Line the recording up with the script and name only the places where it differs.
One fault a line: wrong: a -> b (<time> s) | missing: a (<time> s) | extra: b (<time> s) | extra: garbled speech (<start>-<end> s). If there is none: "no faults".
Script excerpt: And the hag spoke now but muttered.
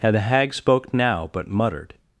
no faults